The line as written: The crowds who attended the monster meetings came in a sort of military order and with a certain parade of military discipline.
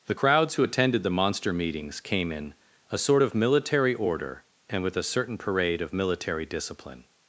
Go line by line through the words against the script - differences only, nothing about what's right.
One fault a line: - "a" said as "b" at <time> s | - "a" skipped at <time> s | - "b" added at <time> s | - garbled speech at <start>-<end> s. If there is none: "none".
none